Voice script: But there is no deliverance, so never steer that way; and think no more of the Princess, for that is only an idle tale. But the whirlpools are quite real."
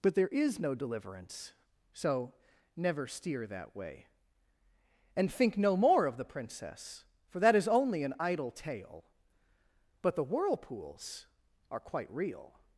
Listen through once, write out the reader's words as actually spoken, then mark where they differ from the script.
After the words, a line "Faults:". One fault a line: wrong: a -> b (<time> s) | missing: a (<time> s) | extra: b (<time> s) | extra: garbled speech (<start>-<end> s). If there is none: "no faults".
But there is no deliverance, so never steer that way; and think no more of the Princess, for that is only an idle tale. But the whirlpools are quite real."
Faults:
no faults